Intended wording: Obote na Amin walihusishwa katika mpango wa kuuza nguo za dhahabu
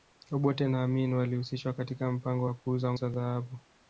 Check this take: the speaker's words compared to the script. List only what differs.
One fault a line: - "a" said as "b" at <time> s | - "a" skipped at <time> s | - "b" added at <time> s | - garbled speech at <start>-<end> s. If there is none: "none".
- "nguo" skipped at 2.9 s